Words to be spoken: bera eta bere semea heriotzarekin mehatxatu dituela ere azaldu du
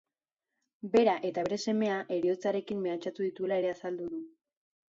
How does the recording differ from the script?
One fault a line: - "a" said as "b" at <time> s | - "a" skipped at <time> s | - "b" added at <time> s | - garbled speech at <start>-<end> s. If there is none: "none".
none